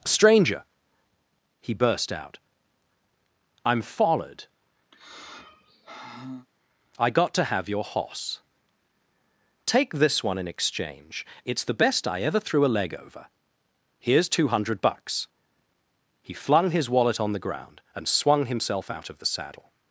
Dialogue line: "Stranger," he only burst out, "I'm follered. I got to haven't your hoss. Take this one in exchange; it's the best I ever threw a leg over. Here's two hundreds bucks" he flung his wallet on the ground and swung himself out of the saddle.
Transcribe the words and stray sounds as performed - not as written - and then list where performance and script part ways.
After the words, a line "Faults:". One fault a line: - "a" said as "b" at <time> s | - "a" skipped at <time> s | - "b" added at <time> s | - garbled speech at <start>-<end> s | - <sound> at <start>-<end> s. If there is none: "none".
"Stranger," he burst out, "I'm follered. I got to have your hoss. Take this one in exchange; it's the best I ever threw a leg over. Here's two hundred bucks" he flung his wallet on the ground and swung himself out of the saddle.
Faults:
- "only" skipped at 1.8 s
- sigh at 4.9-6.5 s
- "haven't" said as "have" at 7.4 s
- "hundreds" said as "hundred" at 14.5 s